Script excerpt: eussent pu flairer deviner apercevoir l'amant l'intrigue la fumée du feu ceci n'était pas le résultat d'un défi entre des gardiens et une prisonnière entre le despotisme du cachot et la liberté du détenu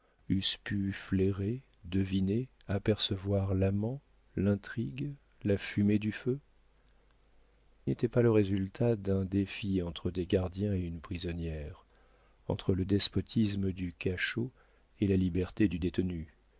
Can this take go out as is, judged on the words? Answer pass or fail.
fail